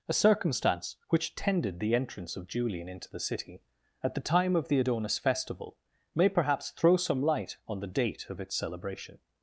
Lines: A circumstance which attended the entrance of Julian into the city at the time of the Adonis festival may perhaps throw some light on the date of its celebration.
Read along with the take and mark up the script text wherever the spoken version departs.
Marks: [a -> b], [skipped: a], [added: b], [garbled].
A circumstance which [attended -> tended] the entrance of Julian into the city at the time of the Adonis festival may perhaps throw some light on the date of its celebration.